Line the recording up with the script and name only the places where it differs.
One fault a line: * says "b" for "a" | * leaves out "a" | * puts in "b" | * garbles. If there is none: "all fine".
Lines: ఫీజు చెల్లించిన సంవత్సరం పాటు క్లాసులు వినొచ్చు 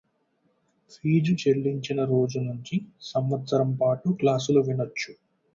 * puts in "రోజు నుంచి"